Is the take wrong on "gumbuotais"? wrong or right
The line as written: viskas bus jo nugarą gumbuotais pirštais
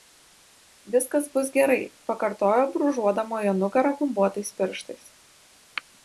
right